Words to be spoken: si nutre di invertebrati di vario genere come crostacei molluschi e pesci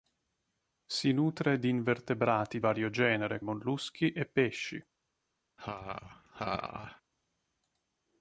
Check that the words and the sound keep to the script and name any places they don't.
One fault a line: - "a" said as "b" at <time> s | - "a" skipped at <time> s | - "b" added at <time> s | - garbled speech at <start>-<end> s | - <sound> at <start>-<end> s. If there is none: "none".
- "di" skipped at 2.6 s
- "come crostacei" skipped at 3.4 s
- laugh at 5.6-7.0 s